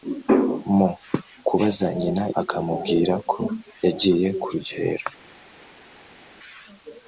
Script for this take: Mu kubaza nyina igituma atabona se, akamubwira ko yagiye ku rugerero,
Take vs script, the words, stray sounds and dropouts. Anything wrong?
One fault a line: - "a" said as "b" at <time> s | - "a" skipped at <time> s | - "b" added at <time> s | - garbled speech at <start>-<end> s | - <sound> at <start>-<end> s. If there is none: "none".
- "igituma atabona se" skipped at 2.2 s